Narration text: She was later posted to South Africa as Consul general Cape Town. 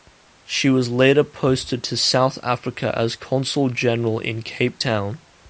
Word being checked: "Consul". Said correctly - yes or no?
yes